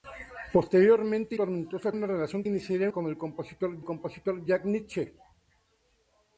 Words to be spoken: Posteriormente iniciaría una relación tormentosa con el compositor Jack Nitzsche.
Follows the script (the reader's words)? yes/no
no